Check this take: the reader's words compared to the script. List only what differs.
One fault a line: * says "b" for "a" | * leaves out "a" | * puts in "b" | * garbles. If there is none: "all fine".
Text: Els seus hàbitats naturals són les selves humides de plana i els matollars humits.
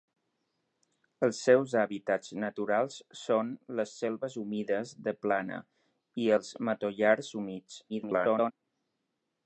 * garbles